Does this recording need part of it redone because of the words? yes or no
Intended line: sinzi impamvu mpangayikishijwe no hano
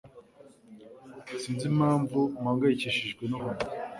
no